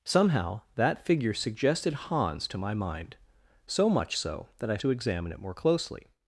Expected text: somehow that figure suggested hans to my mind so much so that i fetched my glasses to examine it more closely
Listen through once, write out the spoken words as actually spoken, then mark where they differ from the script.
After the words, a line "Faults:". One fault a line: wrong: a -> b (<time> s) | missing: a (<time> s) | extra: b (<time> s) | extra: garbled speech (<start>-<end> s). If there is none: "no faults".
somehow that figure suggested hans to my mind so much so that i to examine it more closely
Faults:
missing: fetched my glasses (4.8 s)